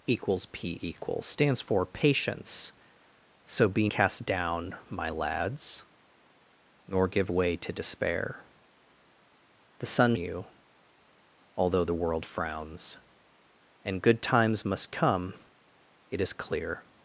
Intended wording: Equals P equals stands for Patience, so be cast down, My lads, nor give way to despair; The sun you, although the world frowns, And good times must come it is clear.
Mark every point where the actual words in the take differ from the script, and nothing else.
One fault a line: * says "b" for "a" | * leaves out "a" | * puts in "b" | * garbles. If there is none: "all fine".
all fine